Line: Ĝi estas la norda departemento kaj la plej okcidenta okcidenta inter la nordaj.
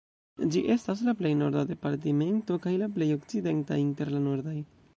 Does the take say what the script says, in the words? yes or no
no